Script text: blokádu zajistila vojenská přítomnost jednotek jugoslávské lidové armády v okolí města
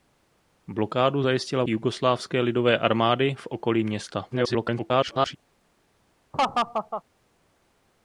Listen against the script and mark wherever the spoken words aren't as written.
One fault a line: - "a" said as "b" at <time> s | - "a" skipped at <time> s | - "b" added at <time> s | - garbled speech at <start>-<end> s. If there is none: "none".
- "vojenská přítomnost jednotek" skipped at 1.6 s
- garbled speech at 4.3-5.4 s